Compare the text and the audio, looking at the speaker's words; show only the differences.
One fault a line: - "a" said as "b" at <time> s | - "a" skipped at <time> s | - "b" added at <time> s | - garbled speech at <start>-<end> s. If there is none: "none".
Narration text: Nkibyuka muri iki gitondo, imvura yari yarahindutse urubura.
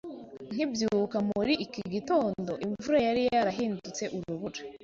none